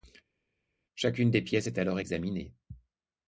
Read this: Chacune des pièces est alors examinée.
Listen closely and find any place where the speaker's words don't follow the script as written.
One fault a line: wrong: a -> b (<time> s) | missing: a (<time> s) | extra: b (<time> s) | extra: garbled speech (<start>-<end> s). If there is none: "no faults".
no faults